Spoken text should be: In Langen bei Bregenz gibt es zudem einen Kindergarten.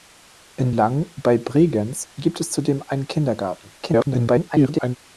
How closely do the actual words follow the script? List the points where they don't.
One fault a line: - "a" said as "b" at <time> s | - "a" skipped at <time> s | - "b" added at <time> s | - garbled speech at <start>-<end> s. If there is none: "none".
- garbled speech at 3.8-5.0 s